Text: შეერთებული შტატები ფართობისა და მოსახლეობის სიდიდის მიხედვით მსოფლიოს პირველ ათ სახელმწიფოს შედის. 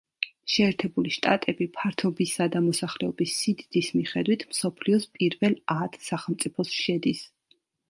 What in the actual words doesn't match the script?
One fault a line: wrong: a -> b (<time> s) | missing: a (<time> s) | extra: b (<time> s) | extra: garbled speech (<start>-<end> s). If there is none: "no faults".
no faults